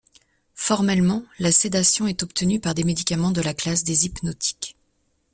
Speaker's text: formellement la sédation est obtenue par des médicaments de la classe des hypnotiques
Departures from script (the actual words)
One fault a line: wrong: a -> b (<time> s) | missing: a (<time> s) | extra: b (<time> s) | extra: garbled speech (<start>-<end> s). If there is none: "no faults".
no faults